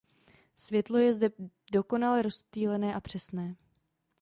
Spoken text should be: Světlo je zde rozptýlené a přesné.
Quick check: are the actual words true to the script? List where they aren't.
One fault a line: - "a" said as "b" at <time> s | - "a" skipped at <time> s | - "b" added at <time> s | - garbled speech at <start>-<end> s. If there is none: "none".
- "dokonale" added at 1.7 s